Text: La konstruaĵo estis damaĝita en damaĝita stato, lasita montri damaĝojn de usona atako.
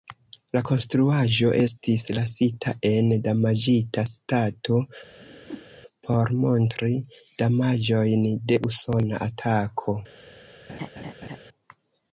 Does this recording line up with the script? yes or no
no